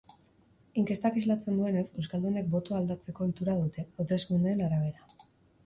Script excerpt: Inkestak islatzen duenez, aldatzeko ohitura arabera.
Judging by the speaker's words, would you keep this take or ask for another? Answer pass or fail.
fail